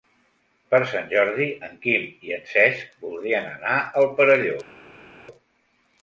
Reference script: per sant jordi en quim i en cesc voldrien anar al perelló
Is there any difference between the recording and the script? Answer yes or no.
no